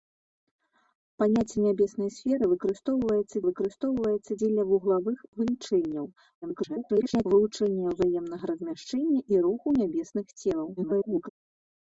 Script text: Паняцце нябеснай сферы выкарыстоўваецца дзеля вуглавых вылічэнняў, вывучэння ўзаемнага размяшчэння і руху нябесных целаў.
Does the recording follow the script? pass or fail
fail